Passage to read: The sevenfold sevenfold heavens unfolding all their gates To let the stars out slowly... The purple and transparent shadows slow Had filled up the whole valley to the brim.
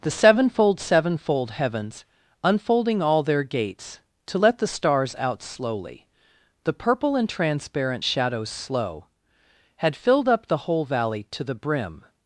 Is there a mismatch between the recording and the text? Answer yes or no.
no